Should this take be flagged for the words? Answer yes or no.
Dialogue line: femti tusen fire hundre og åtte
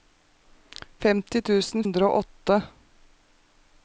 yes